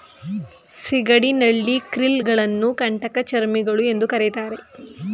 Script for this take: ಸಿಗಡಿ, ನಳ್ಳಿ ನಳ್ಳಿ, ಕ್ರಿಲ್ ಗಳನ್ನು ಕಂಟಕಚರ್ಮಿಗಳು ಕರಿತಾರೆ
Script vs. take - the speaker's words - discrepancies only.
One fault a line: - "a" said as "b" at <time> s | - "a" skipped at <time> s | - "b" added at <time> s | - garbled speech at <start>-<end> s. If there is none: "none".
- "ನಳ್ಳಿ" skipped at 1.8 s
- "ಎಂದು" added at 3.9 s